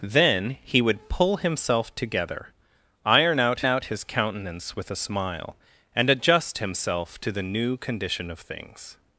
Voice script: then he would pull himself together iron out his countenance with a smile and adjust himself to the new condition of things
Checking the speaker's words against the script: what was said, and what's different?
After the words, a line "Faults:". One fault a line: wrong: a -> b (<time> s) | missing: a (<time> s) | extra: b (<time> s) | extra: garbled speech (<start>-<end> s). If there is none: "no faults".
then he would pull himself together iron out out his countenance with a smile and adjust himself to the new condition of things
Faults:
extra: out (3.6 s)